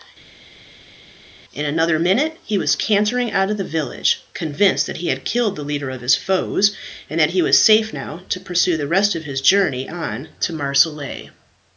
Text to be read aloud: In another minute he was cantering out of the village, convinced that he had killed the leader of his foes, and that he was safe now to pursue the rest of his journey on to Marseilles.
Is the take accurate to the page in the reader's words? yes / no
yes